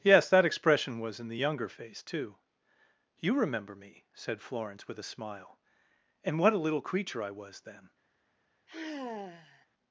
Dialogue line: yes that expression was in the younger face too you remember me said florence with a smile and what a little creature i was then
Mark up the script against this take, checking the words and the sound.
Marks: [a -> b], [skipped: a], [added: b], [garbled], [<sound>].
yes that expression was in the younger face too you remember me said florence with a smile and what a little creature i was then [sigh]